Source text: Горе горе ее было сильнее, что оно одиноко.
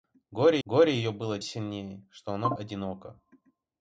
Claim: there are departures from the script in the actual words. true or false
false